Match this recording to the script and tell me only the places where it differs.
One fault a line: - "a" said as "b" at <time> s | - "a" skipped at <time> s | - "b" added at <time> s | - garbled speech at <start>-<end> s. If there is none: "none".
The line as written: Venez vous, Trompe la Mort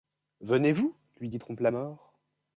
- "lui dit" added at 1.2 s